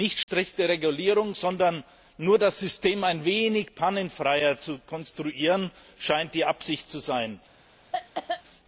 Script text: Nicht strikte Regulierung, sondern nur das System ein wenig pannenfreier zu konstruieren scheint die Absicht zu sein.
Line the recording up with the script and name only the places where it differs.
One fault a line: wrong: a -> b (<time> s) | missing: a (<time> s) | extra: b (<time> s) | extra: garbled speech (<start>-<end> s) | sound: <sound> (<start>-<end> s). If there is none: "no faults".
sound: dropout (0.2-0.3 s)
sound: cough (7.9-8.4 s)